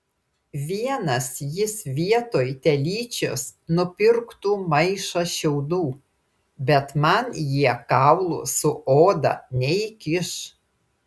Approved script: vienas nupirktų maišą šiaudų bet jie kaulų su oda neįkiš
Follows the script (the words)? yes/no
no